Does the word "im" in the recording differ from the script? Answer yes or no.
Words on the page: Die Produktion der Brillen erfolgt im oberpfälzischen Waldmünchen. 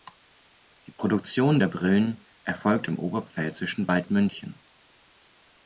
no